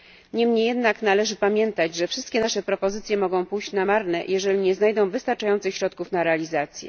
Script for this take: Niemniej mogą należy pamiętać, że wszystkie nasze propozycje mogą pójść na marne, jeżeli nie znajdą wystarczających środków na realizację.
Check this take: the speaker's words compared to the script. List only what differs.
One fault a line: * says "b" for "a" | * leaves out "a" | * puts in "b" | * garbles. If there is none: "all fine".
* says "jednak" for "mogą"